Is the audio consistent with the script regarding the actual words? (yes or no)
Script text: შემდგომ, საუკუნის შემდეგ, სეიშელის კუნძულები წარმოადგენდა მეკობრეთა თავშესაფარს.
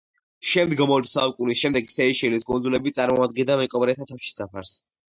no